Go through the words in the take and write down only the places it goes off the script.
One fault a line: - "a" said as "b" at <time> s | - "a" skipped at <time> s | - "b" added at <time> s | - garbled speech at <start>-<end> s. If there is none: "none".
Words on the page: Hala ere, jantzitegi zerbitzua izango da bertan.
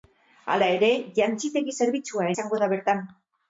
none